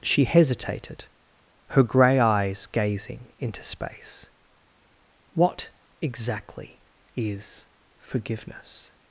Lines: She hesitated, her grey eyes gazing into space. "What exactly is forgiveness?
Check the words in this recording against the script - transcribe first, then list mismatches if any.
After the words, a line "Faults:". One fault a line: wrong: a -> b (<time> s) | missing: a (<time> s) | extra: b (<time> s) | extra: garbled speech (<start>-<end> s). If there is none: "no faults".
She hesitated, her grey eyes gazing into space. "What exactly is forgiveness?
Faults:
no faults